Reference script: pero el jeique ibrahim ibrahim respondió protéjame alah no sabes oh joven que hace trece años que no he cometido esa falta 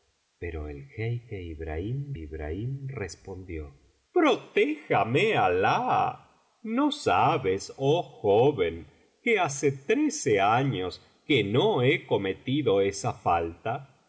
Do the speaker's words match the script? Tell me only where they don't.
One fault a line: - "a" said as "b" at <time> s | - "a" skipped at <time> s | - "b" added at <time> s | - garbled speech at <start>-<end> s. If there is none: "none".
none